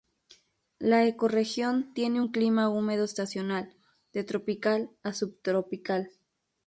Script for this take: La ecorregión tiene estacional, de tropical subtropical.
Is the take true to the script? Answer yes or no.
no